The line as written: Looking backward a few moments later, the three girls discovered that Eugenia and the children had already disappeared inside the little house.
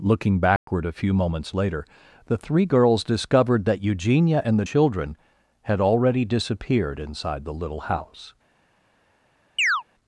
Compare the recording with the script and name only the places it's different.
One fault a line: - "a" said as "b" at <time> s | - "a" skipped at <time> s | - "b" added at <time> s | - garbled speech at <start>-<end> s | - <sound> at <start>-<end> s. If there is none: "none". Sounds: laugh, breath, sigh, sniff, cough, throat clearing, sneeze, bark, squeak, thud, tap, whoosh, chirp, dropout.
- dropout at 0.6-0.7 s
- chirp at 9.6-9.8 s